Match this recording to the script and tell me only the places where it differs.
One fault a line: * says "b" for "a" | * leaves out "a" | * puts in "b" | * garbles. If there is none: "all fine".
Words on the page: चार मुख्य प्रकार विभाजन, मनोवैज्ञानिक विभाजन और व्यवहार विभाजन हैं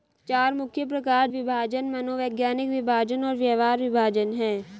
all fine